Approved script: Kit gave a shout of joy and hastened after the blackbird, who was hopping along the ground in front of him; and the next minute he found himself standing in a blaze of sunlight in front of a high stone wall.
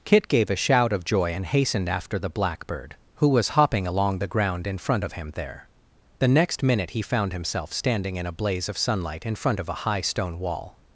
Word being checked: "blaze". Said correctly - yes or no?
yes